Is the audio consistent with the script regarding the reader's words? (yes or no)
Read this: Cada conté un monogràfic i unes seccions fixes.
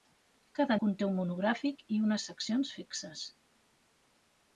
yes